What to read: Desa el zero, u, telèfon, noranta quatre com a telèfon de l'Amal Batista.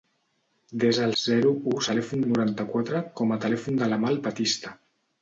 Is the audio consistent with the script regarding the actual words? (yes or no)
yes